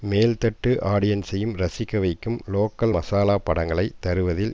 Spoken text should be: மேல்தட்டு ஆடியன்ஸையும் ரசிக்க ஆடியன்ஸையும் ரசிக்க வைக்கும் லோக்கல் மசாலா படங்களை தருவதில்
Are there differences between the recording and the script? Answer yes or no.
yes